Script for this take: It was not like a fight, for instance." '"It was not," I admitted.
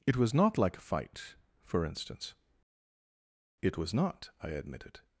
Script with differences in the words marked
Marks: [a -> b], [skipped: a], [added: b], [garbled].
It was not like a fight, for instance." '"It was not," I admitted.